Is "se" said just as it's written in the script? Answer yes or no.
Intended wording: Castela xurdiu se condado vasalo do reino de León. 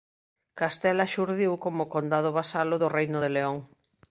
no